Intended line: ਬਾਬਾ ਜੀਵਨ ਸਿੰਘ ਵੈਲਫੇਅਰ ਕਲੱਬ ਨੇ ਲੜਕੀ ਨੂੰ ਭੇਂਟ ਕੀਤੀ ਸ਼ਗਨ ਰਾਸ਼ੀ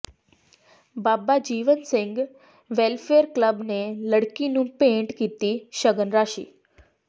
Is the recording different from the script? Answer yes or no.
no